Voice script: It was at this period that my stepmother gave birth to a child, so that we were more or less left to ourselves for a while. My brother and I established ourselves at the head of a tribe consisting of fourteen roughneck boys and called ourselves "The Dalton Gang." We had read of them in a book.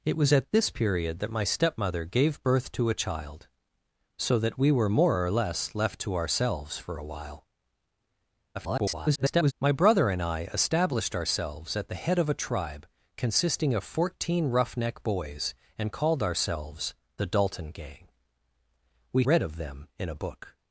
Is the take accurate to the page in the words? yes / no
no